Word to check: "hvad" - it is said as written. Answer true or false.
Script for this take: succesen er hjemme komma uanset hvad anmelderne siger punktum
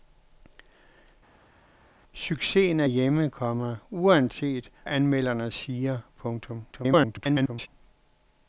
false